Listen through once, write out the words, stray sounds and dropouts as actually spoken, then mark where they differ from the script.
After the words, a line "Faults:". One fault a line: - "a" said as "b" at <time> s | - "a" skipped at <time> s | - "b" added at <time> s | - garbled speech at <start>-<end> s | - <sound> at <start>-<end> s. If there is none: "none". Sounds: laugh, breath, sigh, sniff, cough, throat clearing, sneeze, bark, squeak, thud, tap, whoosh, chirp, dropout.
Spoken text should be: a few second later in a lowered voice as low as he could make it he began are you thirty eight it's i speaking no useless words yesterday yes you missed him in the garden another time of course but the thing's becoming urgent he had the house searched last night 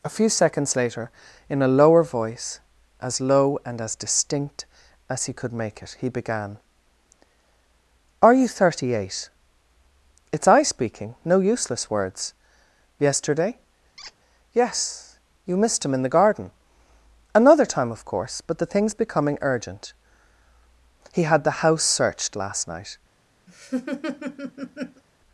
a few seconds later in a lower voice as low and as distinct as he could make it he began are you thirty eight it's i speaking no useless words yesterday yes you missed him in the garden another time of course but the thing's becoming urgent he had the house searched last night
Faults:
- "second" said as "seconds" at 0.3 s
- "lowered" said as "lower" at 1.7 s
- "and as distinct" added at 3.6 s
- squeak at 14.0-14.1 s
- laugh at 23.5-25.0 s